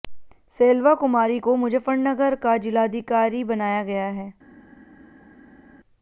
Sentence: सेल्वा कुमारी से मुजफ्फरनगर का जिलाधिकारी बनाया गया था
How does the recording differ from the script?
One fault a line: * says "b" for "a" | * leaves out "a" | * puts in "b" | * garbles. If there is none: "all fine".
* says "को" for "से"
* says "है" for "था"